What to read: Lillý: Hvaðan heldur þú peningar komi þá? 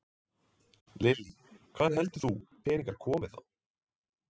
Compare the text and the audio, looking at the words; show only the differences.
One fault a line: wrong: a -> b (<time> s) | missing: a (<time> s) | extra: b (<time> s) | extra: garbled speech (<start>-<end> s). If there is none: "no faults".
no faults